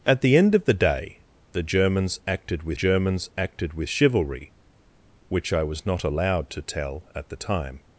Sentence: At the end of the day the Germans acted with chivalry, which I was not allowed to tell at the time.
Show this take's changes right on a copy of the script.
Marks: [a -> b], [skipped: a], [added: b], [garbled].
At the end of the day the Germans acted with [added: Germans acted with] chivalry, which I was not allowed to tell at the time.